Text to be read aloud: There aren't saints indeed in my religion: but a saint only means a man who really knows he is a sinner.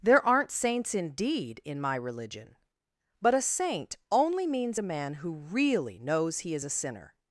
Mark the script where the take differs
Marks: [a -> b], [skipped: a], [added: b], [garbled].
There aren't saints indeed in my religion: but a saint only means a man who really knows he is a sinner.